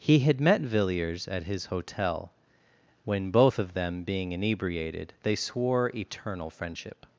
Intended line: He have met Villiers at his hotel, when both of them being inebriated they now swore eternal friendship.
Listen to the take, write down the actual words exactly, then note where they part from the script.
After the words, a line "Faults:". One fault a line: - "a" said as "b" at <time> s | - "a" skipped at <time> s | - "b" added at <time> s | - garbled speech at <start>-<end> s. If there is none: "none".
He had met Villiers at his hotel, when both of them being inebriated they swore eternal friendship.
Faults:
- "have" said as "had" at 0.2 s
- "now" skipped at 5.4 s